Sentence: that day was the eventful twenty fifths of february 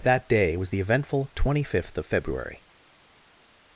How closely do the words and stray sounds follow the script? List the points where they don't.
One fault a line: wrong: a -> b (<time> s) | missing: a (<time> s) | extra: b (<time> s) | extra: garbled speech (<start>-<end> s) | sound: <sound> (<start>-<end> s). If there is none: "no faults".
wrong: fifths -> fifth (1.6 s)